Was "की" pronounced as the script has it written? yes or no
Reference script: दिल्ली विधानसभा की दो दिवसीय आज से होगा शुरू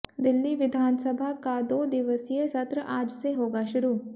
no